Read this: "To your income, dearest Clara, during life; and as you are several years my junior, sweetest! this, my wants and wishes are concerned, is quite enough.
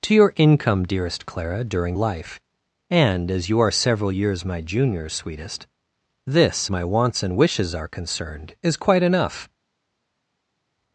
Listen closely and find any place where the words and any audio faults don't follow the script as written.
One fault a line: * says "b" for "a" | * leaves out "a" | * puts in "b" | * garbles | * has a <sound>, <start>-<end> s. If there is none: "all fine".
all fine